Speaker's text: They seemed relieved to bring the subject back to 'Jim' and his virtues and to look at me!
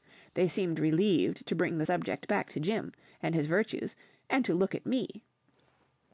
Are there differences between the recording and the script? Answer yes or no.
no